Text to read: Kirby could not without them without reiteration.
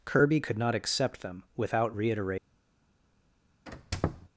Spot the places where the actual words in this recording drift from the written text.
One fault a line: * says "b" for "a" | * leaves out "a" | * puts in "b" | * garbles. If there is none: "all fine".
* says "accept" for "without"